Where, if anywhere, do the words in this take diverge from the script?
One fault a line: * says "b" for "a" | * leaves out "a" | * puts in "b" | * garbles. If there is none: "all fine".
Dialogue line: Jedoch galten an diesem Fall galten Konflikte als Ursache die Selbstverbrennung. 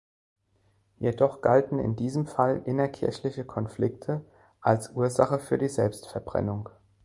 * says "in" for "an"
* says "innerkirchliche" for "galten"
* puts in "für"